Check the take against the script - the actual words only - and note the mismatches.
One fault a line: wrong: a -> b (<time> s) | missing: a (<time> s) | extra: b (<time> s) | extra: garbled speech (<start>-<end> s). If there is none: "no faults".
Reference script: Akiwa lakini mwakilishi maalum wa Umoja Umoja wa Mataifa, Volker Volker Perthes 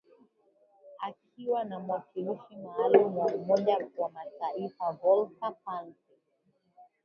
wrong: lakini -> na (1.6 s)
missing: Umoja (3.8 s)
missing: Volker (5.5 s)